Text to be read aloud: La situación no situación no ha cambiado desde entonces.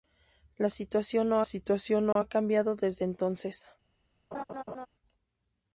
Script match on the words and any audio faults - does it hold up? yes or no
no